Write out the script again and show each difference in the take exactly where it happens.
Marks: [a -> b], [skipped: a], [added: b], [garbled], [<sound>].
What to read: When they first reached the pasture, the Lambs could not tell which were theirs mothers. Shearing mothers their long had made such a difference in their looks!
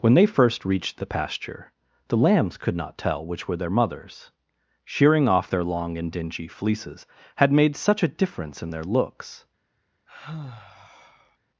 When they first reached the pasture, the Lambs could not tell which were [theirs -> their] mothers. Shearing [mothers -> off] their long [added: and dingy fleeces] had made such a difference in their looks! [sigh]